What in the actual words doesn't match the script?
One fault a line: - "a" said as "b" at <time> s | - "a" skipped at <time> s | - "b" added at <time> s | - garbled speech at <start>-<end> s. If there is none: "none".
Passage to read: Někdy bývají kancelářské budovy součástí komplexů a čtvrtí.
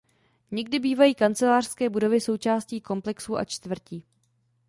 none